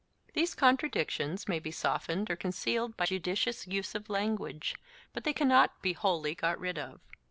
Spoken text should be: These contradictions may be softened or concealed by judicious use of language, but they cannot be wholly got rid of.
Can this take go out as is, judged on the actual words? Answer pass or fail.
pass